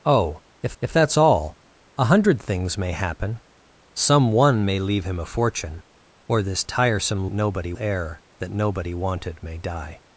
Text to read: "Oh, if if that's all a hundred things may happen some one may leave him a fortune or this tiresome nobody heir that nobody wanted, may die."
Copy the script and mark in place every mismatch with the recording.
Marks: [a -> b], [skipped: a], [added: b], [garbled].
"Oh, if if that's all a hundred things may happen some one may leave him a fortune or this tiresome nobody heir that nobody wanted, may die."